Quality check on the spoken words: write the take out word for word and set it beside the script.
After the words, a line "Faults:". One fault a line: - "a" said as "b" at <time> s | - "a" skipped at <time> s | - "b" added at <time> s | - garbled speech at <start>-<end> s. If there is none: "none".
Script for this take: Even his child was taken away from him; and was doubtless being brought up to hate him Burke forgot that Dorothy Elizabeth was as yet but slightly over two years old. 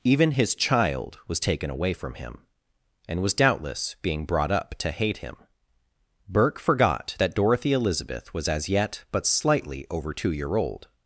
Even his child was taken away from him; and was doubtless being brought up to hate him Burke forgot that Dorothy Elizabeth was as yet but slightly over two year old.
Faults:
- "years" said as "year" at 10.3 s